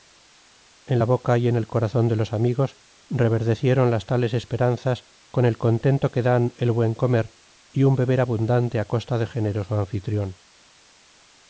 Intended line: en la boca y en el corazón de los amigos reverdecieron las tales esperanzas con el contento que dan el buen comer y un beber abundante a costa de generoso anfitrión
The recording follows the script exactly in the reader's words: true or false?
true